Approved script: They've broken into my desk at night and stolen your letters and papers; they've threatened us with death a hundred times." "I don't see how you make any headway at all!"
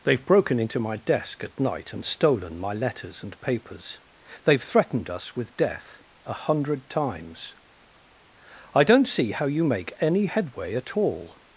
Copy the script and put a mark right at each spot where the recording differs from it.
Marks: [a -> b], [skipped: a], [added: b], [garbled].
They've broken into my desk at night and stolen [your -> my] letters and papers; they've threatened us with death a hundred times." "I don't see how you make any headway at all!"